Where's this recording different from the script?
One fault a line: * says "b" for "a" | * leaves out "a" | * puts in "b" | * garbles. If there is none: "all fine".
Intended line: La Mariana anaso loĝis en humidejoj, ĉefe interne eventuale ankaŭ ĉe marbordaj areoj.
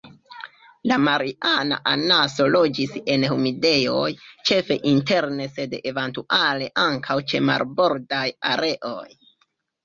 * puts in "sed"